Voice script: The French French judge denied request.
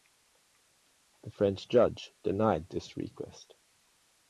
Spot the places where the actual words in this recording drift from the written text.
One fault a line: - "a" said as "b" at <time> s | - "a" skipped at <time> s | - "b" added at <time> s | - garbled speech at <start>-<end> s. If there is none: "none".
- "French" skipped at 1.7 s
- "this" added at 2.7 s